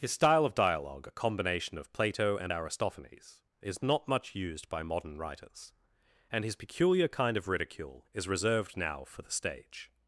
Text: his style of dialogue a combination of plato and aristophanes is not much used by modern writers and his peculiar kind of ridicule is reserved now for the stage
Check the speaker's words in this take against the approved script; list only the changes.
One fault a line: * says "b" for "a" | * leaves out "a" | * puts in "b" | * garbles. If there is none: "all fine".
all fine